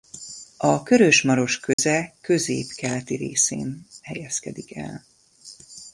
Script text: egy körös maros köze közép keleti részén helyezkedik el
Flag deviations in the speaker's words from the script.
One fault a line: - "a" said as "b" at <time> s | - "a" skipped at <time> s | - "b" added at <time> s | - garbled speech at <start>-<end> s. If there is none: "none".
- "egy" said as "a" at 0.6 s